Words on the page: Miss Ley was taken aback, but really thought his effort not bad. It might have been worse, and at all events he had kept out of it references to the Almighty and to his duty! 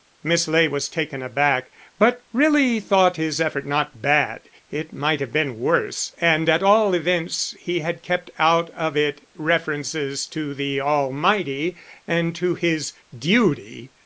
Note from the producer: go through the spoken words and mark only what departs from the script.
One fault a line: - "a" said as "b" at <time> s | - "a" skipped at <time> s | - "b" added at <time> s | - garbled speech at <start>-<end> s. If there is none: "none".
none